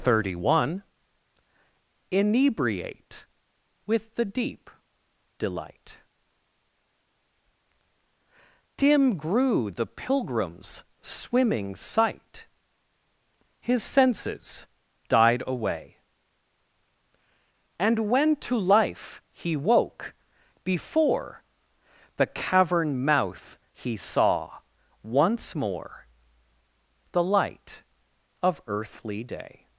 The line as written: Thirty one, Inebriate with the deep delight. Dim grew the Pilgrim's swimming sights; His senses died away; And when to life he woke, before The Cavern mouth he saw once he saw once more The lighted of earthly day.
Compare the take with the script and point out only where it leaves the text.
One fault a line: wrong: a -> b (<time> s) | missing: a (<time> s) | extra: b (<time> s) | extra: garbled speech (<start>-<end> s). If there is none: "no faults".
wrong: sights -> sight (11.8 s)
missing: he saw once (25.5 s)
wrong: lighted -> light (27.2 s)